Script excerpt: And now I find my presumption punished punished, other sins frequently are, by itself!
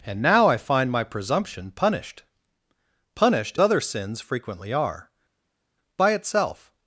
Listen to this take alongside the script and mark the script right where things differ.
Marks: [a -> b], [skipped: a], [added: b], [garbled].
And now I find my presumption punished punished, other sins frequently are, by itself!